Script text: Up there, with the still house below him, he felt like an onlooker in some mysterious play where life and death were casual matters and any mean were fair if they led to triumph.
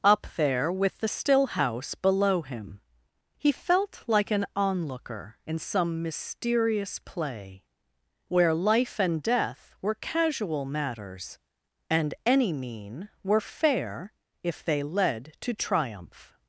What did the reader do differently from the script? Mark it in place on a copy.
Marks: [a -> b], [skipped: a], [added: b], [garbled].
Up there, with the still house below him, he felt like an onlooker in some mysterious play where life and death were casual matters and any mean were fair if they led to triumph.